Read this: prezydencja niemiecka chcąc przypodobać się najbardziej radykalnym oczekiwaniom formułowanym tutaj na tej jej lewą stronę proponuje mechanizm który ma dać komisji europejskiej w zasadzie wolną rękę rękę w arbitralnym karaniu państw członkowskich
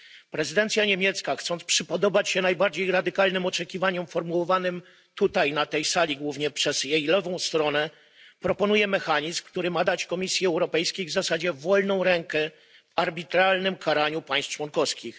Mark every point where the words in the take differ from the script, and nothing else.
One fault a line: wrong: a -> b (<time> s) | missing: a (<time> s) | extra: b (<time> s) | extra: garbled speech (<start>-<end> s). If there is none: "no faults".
extra: sali głównie przez (5.8 s)
missing: rękę (12.5 s)